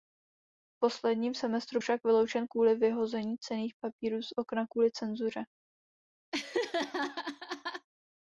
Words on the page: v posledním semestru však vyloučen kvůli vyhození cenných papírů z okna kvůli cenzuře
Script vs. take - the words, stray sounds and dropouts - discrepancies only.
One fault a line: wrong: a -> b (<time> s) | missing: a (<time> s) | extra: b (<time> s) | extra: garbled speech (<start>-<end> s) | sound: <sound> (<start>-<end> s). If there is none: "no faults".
sound: laugh (6.3-7.9 s)